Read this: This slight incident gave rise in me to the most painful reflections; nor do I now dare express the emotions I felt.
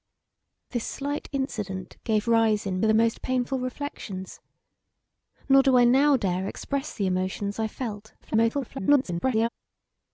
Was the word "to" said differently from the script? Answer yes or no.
yes